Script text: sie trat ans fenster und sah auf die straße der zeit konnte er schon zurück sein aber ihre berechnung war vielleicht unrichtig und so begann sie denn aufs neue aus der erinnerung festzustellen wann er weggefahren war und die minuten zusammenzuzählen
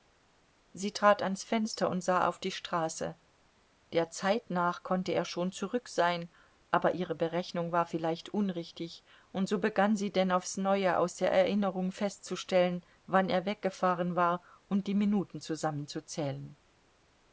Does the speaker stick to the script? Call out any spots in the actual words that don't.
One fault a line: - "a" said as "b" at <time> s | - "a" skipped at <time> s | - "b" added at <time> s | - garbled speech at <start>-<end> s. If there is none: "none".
- "nach" added at 4.5 s